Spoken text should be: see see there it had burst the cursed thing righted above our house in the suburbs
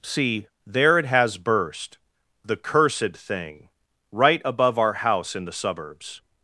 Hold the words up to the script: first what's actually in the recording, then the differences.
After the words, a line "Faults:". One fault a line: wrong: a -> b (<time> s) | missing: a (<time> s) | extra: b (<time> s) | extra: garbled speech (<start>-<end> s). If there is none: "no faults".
see there it has burst the cursed thing right above our house in the suburbs
Faults:
missing: see (0.5 s)
wrong: had -> has (1.1 s)
wrong: righted -> right (4.1 s)